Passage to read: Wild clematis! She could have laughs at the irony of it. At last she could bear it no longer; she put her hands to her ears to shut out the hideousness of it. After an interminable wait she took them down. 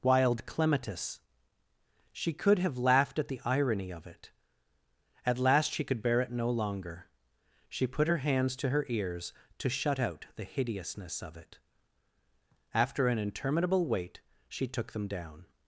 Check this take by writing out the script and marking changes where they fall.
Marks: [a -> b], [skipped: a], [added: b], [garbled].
Wild clematis! She could have [laughs -> laughed] at the irony of it. At last she could bear it no longer; she put her hands to her ears to shut out the hideousness of it. After an interminable wait she took them down.